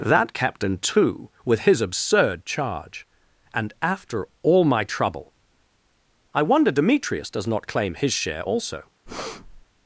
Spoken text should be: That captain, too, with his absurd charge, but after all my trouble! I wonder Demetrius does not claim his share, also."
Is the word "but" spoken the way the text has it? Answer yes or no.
no